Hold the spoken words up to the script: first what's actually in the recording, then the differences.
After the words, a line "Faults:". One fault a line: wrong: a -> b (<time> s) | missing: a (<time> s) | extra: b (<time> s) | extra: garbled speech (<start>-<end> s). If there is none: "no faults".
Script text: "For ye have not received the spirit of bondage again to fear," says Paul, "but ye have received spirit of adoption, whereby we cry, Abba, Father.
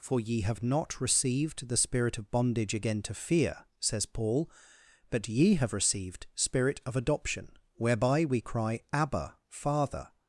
"For ye have not received the spirit of bondage again to fear," says Paul, "but ye have received spirit of adoption, whereby we cry, Abba, Father.
Faults:
no faults